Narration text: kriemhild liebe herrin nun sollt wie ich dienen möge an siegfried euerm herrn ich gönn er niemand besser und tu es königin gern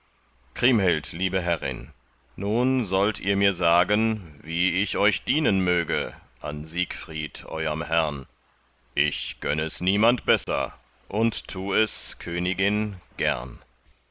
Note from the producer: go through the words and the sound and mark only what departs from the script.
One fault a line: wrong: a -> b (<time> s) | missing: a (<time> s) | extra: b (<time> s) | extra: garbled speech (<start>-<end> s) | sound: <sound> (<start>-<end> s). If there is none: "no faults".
extra: ihr mir sagen (3.2 s)
extra: euch (5.0 s)
wrong: er -> es (9.6 s)
sound: dropout (10.4-10.5 s)